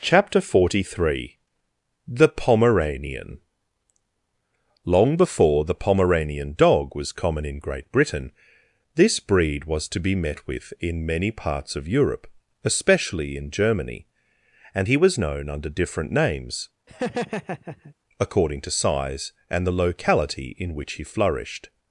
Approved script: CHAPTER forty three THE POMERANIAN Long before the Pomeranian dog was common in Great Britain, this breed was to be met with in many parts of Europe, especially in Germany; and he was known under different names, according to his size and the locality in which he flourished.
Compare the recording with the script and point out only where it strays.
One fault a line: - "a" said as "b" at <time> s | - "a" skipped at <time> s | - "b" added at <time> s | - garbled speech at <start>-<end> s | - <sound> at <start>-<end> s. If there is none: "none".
- laugh at 16.9-18.0 s
- "his" skipped at 18.7 s